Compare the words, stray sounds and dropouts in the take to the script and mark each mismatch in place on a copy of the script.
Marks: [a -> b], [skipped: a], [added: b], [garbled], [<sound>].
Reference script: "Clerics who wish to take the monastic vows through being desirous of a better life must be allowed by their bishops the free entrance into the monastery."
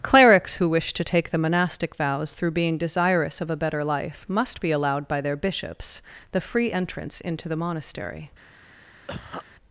"Clerics who wish to take the monastic vows through being desirous of a better life must be allowed by their bishops the free entrance into the monastery." [cough]